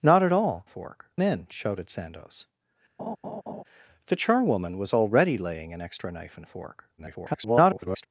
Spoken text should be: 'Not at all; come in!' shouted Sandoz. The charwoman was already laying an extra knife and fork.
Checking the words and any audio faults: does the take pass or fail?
fail